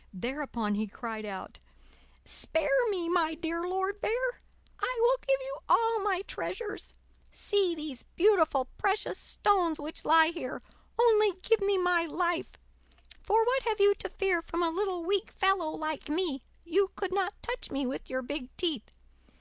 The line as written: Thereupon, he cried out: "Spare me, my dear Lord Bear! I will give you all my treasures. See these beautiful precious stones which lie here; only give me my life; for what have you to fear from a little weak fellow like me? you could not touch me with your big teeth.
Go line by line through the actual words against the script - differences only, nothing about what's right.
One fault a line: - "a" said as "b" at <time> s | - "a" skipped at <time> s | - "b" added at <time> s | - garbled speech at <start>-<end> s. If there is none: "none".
none